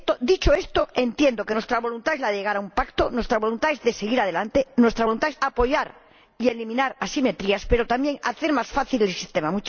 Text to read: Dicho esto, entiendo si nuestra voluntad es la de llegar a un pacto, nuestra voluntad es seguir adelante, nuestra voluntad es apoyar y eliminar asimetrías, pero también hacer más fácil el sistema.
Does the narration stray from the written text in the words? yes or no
yes